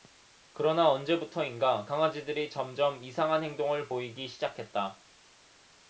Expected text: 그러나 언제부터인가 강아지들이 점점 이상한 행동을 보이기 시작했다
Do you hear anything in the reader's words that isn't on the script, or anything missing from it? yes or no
no